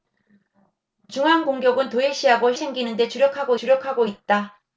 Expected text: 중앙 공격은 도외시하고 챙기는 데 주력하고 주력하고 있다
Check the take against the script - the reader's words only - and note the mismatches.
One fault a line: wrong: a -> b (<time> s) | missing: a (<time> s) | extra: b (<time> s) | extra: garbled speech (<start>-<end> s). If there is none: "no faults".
no faults